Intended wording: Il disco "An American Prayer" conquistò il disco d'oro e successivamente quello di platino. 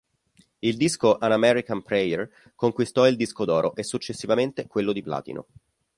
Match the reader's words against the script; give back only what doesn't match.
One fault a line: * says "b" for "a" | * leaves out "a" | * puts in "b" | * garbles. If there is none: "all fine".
all fine